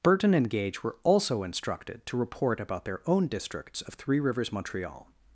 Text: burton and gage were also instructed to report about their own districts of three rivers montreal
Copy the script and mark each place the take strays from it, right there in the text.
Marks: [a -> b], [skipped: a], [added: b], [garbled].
burton and gage were also instructed to report about their own districts of three rivers montreal